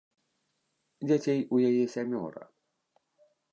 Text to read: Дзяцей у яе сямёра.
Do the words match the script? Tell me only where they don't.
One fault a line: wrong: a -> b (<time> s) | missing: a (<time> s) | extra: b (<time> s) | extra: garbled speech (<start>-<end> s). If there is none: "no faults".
no faults